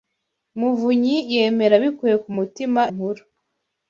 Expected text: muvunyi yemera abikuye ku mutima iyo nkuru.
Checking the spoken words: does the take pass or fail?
fail